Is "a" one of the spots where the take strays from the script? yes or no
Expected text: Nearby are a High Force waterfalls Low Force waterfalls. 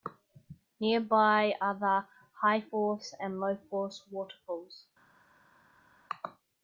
yes